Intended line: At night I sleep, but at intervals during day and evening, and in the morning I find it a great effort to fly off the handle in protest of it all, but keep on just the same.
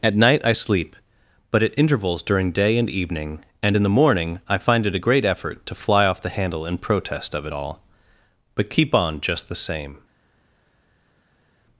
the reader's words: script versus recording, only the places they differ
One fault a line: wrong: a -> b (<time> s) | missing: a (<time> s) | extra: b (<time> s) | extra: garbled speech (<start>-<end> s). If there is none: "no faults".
no faults